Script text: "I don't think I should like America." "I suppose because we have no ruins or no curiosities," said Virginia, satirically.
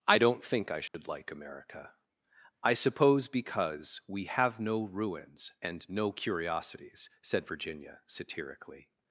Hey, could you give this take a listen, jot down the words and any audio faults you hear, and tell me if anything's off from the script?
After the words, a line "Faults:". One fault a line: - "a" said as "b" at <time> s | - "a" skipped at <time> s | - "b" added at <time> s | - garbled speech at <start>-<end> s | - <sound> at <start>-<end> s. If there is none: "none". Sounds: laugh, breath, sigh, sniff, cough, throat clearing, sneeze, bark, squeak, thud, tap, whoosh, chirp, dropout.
"I don't think I should like America." "I suppose because we have no ruins and no curiosities," said Virginia, satirically.
Faults:
- dropout at 0.9-0.9 s
- "or" said as "and" at 5.6 s